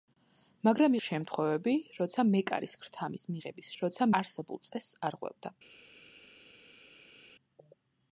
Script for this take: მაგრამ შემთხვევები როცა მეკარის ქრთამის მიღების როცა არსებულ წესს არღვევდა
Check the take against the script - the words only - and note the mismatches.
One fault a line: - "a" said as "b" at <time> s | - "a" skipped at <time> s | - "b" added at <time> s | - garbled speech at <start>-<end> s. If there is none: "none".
none